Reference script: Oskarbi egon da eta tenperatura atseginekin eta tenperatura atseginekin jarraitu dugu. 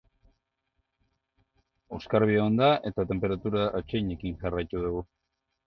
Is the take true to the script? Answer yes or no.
no